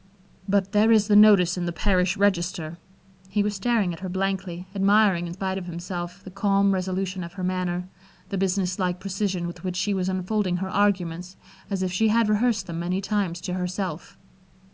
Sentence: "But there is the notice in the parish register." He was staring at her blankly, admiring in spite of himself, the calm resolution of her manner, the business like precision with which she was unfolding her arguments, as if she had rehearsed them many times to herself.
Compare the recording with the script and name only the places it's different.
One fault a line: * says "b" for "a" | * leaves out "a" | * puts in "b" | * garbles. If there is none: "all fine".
all fine